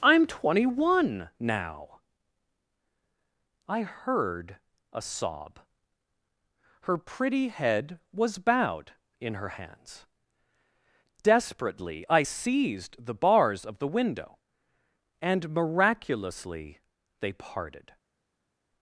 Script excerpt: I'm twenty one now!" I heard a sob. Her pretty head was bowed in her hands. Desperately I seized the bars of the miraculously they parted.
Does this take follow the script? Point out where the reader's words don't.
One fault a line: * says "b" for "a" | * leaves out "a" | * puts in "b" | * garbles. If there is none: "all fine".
* puts in "window and"